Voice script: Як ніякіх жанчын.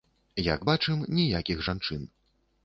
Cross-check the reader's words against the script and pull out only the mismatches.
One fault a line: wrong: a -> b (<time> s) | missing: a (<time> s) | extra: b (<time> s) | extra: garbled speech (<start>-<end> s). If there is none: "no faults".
extra: бачым (0.7 s)